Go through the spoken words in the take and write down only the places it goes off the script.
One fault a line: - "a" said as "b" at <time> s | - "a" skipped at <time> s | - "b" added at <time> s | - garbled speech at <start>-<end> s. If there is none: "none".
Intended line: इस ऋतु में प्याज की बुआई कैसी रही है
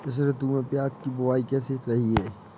none